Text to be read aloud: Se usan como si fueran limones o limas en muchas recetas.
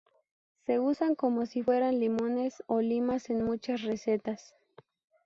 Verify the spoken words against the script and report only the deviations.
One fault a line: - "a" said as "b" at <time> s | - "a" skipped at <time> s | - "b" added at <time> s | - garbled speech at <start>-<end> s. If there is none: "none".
none